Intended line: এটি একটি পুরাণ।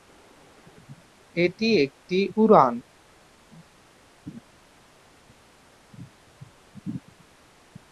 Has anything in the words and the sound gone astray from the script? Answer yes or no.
no